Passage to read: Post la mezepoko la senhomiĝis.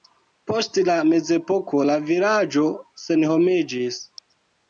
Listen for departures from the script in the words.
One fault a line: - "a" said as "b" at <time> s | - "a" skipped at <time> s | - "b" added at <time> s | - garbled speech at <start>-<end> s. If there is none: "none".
- "vilaĝo" added at 2.1 s